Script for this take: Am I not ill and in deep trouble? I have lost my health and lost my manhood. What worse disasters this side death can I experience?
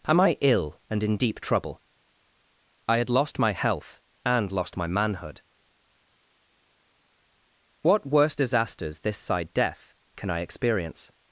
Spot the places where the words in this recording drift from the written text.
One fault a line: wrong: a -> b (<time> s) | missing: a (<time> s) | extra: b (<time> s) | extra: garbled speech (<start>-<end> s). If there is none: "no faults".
missing: not (0.3 s)
wrong: have -> had (3.0 s)